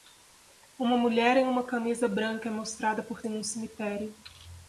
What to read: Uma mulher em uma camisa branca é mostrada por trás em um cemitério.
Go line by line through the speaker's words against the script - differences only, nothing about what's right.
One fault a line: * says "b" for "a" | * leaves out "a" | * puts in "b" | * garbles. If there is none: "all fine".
* leaves out "trás"